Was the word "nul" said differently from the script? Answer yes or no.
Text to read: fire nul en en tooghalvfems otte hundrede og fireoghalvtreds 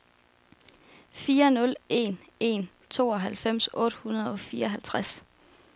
no